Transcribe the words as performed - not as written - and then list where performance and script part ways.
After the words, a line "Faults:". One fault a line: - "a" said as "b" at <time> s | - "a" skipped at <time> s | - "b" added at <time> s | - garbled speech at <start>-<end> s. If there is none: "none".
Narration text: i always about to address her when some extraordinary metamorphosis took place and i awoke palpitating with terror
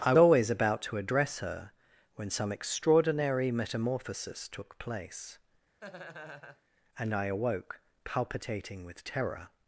i always about to address her when some extraordinary metamorphosis took place and i awoke palpitating with terror
Faults:
none